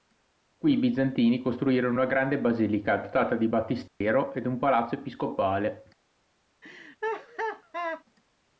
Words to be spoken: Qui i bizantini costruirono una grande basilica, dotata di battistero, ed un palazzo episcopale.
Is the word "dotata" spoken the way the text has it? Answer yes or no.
yes